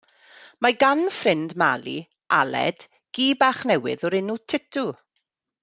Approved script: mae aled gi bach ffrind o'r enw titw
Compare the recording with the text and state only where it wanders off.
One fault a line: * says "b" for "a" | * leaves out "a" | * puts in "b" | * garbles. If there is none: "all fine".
* puts in "gan ffrind mali"
* says "newydd" for "ffrind"